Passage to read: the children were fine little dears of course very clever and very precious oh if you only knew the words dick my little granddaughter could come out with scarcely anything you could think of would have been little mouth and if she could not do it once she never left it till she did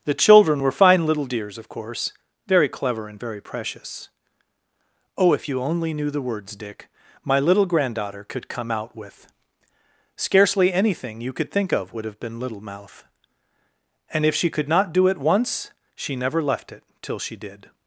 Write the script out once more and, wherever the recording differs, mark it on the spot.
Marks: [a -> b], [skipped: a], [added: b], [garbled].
the children were fine little dears of course very clever and very precious oh if you only knew the words dick my little granddaughter could come out with scarcely anything you could think of would have been little mouth and if she could not do it once she never left it till she did